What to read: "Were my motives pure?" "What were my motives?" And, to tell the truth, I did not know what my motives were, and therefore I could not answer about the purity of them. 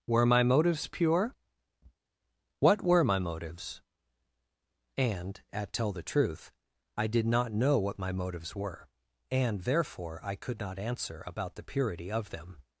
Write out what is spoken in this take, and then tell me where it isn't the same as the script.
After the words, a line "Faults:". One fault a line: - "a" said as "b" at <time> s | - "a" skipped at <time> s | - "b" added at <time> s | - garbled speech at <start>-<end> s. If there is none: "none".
"Were my motives pure?" "What were my motives?" And, at tell the truth, I did not know what my motives were, and therefore I could not answer about the purity of them.
Faults:
- "to" said as "at" at 5.5 s